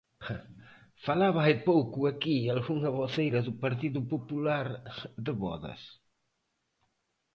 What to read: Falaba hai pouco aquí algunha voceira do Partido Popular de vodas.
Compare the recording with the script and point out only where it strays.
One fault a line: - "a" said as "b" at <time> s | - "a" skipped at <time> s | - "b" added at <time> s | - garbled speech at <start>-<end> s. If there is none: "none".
none